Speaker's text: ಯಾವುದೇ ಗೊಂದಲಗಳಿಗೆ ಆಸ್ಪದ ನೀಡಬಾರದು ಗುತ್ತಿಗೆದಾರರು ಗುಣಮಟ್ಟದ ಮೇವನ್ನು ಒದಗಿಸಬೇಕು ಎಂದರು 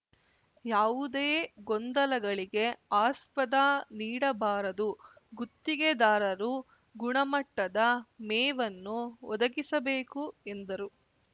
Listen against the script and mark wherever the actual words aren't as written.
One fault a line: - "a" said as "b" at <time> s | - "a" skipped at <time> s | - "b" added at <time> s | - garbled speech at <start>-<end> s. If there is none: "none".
none